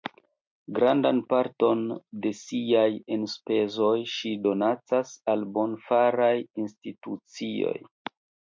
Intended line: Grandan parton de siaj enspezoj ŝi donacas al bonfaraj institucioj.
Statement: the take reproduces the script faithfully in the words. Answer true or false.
true